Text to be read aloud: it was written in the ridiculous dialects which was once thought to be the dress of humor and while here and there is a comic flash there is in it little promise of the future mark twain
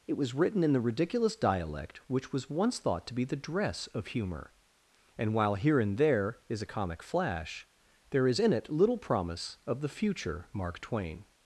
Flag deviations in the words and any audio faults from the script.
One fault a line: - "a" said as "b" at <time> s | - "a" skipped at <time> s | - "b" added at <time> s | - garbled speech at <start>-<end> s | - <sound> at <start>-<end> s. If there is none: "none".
- "dialects" said as "dialect" at 1.4 s